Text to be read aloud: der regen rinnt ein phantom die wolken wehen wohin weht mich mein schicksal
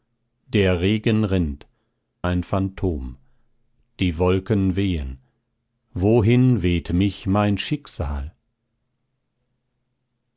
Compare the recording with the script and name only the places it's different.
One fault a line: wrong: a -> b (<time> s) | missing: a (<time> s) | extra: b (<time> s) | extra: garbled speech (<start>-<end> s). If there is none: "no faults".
no faults